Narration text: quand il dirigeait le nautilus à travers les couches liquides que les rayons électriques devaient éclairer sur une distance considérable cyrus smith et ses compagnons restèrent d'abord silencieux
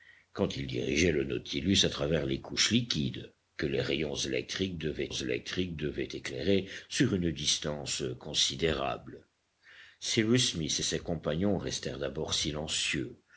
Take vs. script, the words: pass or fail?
fail